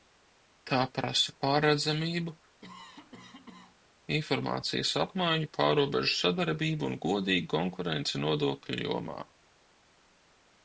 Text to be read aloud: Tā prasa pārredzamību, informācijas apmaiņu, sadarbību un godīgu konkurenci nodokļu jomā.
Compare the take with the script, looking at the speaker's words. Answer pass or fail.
fail